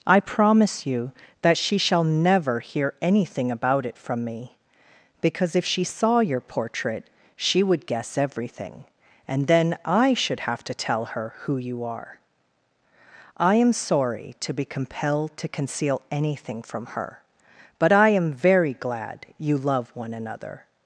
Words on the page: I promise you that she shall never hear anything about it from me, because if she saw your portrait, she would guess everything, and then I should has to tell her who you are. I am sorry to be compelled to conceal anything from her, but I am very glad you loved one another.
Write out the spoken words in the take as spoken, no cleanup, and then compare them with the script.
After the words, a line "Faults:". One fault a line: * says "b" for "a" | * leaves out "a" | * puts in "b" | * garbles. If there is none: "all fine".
I promise you that she shall never hear anything about it from me, because if she saw your portrait, she would guess everything, and then I should have to tell her who you are. I am sorry to be compelled to conceal anything from her, but I am very glad you love one another.
Faults:
* says "have" for "has"
* says "love" for "loved"